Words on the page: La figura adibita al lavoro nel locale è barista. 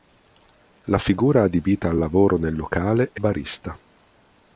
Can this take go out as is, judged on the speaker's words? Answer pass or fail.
pass